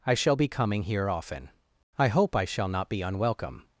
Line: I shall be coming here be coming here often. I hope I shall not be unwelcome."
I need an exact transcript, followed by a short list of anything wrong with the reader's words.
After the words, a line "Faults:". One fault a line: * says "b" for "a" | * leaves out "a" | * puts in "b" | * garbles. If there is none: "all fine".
I shall be coming here often. I hope I shall not be unwelcome."
Faults:
* leaves out "be coming here"